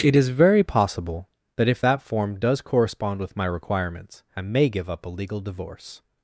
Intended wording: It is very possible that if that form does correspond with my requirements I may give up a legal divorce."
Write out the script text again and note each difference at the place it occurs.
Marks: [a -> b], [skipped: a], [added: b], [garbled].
It is very possible that if that form does correspond with my requirements I may give up a legal divorce."